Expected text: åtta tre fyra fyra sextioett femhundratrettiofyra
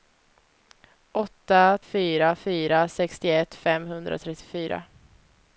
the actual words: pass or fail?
fail